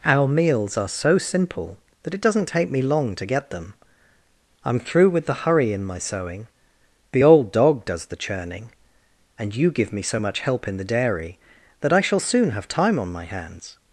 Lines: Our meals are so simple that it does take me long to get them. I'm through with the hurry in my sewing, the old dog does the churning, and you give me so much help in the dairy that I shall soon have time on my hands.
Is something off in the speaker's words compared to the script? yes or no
yes